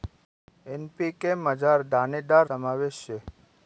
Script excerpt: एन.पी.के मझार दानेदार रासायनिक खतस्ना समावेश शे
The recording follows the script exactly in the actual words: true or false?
false